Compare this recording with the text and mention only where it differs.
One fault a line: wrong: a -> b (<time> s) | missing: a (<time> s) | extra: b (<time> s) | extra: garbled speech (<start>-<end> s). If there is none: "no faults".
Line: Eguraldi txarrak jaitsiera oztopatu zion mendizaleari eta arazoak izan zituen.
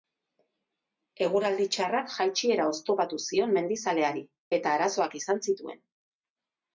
no faults